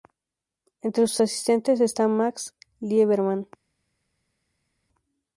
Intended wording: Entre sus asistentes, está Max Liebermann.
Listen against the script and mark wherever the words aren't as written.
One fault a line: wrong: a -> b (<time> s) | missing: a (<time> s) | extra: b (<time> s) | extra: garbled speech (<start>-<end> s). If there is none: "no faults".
no faults